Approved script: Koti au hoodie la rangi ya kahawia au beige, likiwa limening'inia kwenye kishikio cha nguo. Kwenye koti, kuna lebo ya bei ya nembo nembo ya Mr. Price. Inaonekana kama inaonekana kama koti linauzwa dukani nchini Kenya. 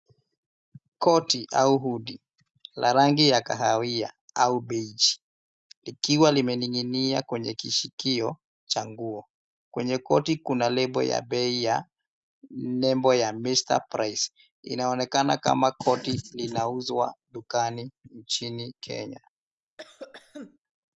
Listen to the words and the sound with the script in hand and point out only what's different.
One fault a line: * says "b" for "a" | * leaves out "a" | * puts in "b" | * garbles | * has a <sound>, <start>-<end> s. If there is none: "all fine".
* leaves out "nembo"
* leaves out "inaonekana kama"
* has a cough, 19.8-20.6 s